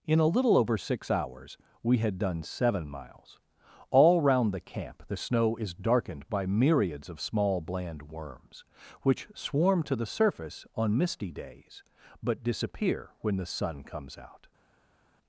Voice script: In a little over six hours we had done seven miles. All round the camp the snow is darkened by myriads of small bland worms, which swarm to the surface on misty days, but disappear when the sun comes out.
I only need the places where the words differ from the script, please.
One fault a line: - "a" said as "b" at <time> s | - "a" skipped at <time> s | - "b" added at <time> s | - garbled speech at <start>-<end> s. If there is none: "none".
none